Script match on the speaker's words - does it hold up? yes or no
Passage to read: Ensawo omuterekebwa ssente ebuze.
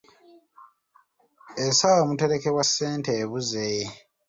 yes